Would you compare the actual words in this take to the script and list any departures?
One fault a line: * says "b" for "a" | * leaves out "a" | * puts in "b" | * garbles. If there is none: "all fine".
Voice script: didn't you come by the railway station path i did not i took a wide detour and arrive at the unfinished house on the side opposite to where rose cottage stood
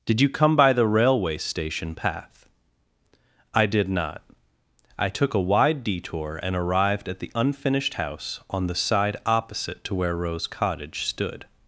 * says "did" for "didn't"
* says "arrived" for "arrive"